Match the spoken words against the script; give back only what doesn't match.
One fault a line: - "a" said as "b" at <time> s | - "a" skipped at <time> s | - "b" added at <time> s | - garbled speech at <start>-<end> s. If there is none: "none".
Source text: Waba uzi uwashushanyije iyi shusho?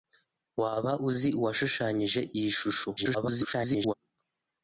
- garbled speech at 3.0-3.9 s